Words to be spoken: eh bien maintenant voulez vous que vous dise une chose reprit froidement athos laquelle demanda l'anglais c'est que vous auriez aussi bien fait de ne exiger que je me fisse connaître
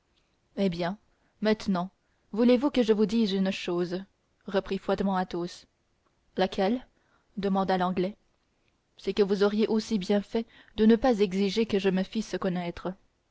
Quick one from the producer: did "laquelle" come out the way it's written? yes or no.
yes